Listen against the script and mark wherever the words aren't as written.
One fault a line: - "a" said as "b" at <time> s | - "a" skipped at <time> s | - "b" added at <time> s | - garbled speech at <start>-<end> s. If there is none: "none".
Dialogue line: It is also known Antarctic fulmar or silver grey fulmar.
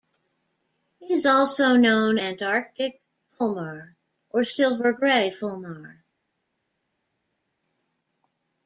none